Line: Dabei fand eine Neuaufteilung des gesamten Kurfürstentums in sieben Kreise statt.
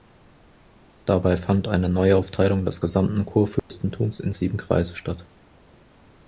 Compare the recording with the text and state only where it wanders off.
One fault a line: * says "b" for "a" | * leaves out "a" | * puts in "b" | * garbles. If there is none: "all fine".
all fine